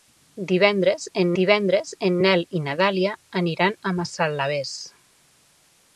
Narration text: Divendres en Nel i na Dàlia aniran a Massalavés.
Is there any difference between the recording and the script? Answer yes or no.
yes